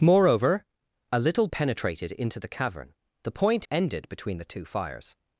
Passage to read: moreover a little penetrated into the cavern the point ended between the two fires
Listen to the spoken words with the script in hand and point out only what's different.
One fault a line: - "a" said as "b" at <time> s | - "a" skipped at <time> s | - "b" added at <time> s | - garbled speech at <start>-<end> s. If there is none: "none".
none